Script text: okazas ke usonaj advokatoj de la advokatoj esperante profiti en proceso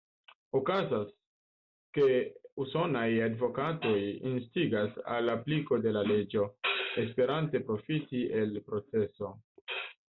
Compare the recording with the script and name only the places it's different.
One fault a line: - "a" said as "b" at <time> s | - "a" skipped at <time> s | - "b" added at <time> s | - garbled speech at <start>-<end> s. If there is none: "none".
- "instigas al apliko" added at 4.3 s
- "advokatoj" said as "leĝo" at 6.1 s
- "en" said as "el" at 8.4 s